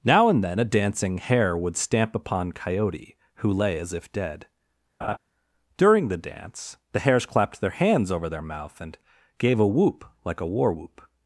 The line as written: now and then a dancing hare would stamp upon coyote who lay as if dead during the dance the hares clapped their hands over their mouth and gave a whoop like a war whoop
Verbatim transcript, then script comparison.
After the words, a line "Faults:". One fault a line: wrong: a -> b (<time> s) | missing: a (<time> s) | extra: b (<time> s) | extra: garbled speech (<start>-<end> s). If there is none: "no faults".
now and then a dancing hare would stamp upon coyote who lay as if dead during the dance the hares clapped their hands over their mouth and gave a whoop like a war whoop
Faults:
no faults